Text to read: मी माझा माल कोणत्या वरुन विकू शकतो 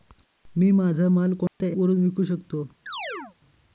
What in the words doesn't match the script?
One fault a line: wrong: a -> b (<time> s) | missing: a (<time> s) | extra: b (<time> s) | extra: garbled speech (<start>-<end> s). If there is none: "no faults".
no faults